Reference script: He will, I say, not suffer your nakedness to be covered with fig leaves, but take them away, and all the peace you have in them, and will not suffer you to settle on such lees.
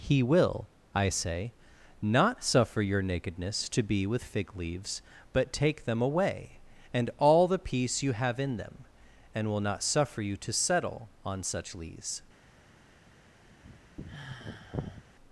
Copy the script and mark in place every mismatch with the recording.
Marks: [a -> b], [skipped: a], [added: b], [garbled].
He will, I say, not suffer your nakedness to be [skipped: covered] with fig leaves, but take them away, and all the peace you have in them, and will not suffer you to settle on such lees.